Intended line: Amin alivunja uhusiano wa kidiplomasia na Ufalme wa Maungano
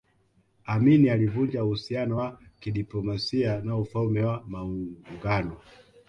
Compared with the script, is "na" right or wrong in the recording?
right